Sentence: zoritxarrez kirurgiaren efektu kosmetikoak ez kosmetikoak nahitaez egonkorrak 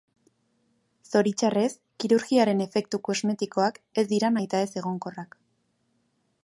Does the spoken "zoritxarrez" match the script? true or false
true